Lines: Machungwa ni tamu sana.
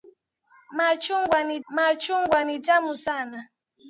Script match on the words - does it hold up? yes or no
no